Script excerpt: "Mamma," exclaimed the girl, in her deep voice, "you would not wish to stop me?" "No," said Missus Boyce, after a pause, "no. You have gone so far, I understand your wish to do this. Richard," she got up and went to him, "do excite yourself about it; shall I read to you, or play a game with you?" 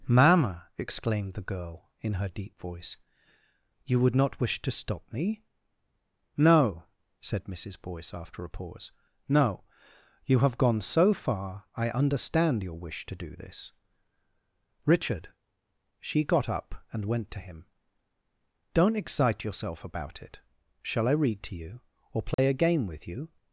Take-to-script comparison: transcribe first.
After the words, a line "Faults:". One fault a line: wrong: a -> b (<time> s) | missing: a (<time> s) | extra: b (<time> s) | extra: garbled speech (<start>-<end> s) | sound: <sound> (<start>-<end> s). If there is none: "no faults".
"Mamma," exclaimed the girl, in her deep voice, "you would not wish to stop me?" "No," said Missus Boyce, after a pause, "no. You have gone so far, I understand your wish to do this. Richard," she got up and went to him, "don't excite yourself about it; shall I read to you, or play a game with you?"
Faults:
wrong: do -> don't (18.7 s)
sound: dropout (22.3-22.4 s)